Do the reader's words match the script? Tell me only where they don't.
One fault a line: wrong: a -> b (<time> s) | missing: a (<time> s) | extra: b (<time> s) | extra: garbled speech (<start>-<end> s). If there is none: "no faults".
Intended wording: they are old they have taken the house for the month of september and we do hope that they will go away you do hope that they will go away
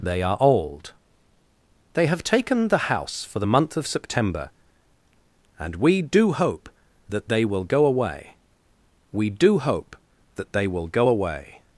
wrong: you -> we (9.1 s)